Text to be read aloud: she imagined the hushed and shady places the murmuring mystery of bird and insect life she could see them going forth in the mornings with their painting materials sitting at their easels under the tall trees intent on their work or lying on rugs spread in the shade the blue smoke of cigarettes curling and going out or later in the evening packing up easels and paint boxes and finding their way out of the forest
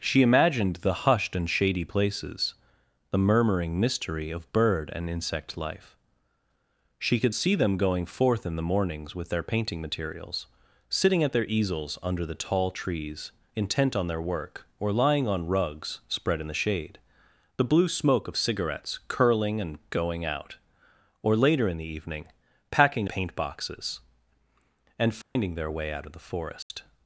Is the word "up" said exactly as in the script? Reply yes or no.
no